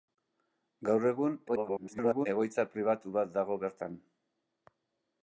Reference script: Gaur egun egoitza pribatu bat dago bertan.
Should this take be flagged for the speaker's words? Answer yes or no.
yes